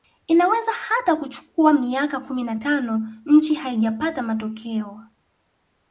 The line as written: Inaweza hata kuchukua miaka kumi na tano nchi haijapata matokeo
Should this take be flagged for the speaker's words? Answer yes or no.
no